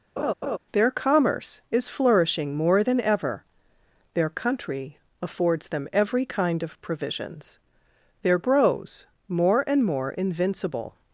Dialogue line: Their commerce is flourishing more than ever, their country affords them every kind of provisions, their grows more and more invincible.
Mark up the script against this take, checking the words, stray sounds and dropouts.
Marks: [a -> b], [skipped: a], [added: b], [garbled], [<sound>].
[laugh] Their commerce is flourishing more than ever, their country affords them every kind of provisions, their grows more and more invincible.